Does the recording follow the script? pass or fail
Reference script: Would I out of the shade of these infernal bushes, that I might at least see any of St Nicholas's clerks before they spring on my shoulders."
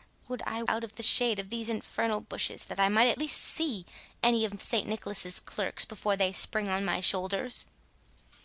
pass